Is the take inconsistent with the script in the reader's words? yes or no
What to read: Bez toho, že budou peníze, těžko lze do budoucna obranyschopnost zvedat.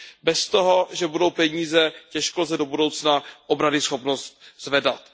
no